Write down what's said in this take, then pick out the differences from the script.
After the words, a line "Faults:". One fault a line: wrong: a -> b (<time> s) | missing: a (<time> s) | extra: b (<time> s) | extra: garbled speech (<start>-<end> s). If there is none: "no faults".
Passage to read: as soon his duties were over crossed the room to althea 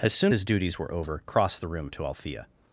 as soon his duties were over crossed the room to althea
Faults:
no faults